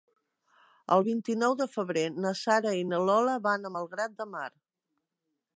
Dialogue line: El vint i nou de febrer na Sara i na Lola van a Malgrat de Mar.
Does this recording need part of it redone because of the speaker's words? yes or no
no